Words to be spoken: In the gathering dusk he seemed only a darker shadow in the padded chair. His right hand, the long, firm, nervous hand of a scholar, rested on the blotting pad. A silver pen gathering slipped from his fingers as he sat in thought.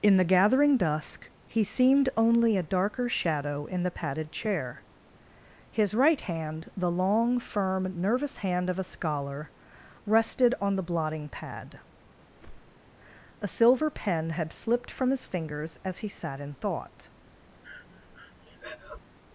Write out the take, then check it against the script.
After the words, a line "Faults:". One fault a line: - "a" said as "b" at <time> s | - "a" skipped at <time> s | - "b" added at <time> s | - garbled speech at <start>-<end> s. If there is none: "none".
In the gathering dusk he seemed only a darker shadow in the padded chair. His right hand, the long, firm, nervous hand of a scholar, rested on the blotting pad. A silver pen had slipped from his fingers as he sat in thought.
Faults:
- "gathering" said as "had" at 14.3 s